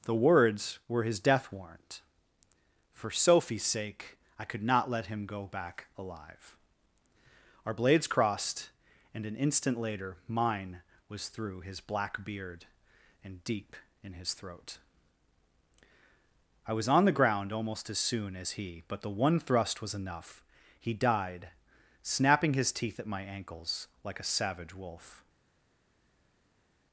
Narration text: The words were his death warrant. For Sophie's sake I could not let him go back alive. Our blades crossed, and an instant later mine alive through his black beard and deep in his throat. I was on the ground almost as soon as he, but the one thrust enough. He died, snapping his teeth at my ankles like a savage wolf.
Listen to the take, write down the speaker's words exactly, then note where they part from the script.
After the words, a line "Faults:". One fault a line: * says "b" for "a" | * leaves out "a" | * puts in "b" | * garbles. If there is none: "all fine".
The words were his death warrant. For Sophie's sake I could not let him go back alive. Our blades crossed, and an instant later mine was through his black beard and deep in his throat. I was on the ground almost as soon as he, but the one thrust was enough. He died, snapping his teeth at my ankles like a savage wolf.
Faults:
* says "was" for "alive"
* puts in "was"